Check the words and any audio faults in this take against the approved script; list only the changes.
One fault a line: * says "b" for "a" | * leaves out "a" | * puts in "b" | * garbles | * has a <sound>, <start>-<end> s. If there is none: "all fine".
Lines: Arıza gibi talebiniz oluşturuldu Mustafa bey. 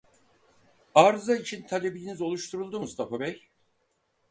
* says "için" for "gibi"